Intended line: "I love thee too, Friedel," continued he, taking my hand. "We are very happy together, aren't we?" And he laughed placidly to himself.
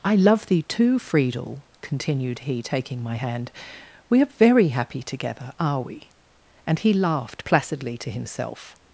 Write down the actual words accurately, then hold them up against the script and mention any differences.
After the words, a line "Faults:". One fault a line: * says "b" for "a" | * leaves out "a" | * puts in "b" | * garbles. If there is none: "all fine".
"I love thee too, Friedel," continued he, taking my hand. "We are very happy together, are we?" And he laughed placidly to himself.
Faults:
* says "are" for "aren't"